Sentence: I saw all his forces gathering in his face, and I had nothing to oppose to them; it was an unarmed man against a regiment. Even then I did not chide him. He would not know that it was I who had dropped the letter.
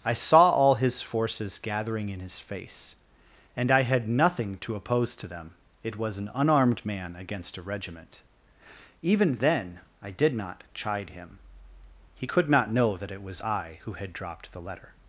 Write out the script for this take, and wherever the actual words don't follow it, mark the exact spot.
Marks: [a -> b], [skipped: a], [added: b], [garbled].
I saw all his forces gathering in his face, and I had nothing to oppose to them; it was an unarmed man against a regiment. Even then I did not chide him. He [would -> could] not know that it was I who had dropped the letter.